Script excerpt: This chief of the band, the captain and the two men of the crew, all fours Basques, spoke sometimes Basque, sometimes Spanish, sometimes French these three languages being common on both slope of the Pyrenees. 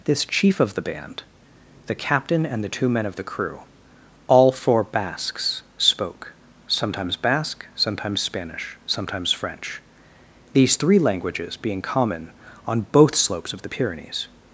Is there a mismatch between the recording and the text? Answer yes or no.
yes